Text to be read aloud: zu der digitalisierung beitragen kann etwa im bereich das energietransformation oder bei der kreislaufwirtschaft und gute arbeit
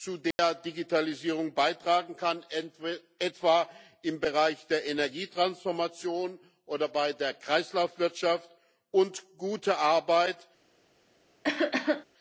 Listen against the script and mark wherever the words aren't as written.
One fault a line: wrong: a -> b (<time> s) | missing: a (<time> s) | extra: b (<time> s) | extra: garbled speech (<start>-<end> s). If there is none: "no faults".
wrong: das -> der (4.7 s)